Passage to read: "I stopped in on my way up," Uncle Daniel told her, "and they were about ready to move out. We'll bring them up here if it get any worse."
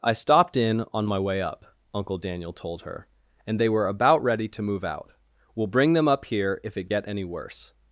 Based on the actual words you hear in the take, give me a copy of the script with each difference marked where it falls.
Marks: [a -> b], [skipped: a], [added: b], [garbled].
"I stopped in on my way up," Uncle Daniel told her, "and they were about ready to move out. We'll bring them up here if it get any worse."